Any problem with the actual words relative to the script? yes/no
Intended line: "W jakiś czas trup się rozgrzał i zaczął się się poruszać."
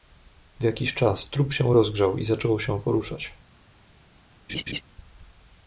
yes